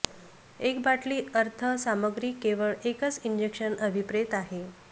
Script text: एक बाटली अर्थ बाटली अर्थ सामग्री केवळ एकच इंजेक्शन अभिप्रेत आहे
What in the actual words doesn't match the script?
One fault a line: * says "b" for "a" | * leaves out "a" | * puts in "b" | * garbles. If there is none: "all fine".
* leaves out "बाटली अर्थ"